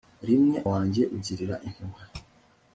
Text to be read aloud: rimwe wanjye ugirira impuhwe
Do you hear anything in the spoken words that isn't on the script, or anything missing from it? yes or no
no